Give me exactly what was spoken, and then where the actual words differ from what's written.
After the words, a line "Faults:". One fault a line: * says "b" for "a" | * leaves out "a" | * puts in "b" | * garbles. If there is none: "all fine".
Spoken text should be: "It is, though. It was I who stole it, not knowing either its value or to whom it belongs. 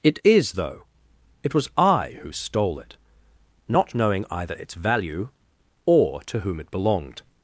"It is, though. It was I who stole it, not knowing either its value or to whom it belonged.
Faults:
* says "belonged" for "belongs"